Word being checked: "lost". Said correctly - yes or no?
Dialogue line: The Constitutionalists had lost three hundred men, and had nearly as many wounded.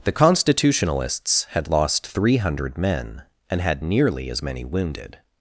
yes